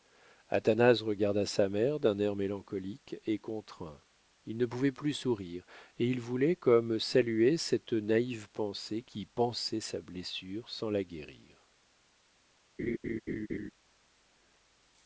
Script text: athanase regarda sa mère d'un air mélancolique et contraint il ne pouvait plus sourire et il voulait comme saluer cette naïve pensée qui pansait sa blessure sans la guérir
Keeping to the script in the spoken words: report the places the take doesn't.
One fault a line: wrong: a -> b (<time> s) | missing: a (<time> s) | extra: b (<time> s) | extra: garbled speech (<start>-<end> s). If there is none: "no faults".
no faults